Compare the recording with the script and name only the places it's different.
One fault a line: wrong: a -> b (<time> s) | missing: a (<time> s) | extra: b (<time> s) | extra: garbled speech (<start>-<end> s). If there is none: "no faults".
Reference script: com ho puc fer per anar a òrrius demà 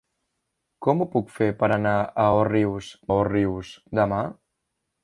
extra: òrrius (3.2 s)